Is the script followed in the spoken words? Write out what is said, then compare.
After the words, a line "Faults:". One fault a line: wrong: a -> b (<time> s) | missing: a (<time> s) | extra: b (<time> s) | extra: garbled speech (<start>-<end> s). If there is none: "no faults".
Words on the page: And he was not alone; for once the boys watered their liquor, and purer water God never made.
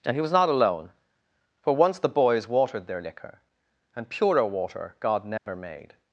And he was not alone; for once the boys watered their liquor, and purer water God never made.
Faults:
no faults